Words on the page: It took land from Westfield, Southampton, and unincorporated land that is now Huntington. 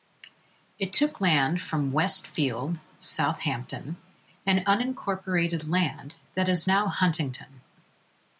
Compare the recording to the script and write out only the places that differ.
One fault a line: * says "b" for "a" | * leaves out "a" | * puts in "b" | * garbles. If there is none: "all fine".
all fine